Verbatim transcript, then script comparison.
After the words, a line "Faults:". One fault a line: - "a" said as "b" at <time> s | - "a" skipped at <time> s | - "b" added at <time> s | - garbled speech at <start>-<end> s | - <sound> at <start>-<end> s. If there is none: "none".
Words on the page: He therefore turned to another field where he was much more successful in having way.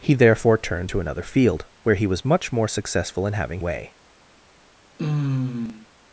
He therefore turned to another field where he was much more successful in having way.
Faults:
- sigh at 5.0-5.9 s